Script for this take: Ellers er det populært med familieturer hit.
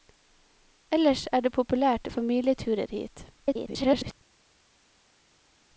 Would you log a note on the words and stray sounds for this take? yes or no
yes